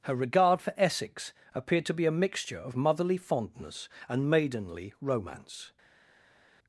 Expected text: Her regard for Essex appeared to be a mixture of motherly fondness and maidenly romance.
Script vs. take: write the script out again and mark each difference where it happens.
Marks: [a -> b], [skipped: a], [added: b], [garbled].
Her regard for Essex appeared to be a mixture of motherly fondness and maidenly romance.